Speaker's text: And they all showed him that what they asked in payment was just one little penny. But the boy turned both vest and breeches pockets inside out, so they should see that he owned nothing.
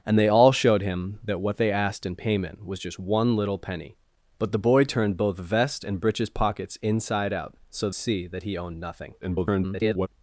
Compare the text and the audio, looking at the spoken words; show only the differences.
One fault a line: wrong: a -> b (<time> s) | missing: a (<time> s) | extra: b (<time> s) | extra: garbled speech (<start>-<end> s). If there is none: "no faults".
missing: they should (7.9 s)
extra: garbled speech (9.2-10.1 s)